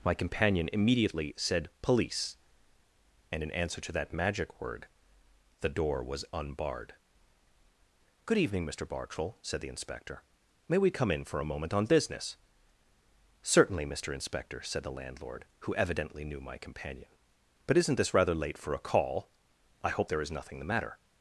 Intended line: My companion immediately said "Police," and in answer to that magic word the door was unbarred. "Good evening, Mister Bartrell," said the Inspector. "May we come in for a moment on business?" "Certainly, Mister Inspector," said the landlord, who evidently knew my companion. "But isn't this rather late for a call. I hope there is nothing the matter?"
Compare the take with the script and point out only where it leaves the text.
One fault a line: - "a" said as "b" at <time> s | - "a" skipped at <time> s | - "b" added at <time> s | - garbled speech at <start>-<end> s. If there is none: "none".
none